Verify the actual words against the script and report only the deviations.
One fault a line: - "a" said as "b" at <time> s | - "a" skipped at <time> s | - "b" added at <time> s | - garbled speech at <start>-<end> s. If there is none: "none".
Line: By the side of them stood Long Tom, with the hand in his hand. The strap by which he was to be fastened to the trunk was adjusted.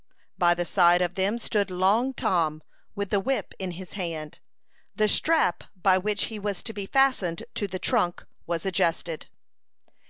- "hand" said as "whip" at 3.2 s